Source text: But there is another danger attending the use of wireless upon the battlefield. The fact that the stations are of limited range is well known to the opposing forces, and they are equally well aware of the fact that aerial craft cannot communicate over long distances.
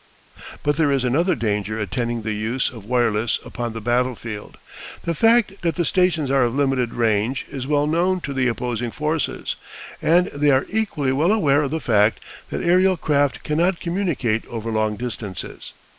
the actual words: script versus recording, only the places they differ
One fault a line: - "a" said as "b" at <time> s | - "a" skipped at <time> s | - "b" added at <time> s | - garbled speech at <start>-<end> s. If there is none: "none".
none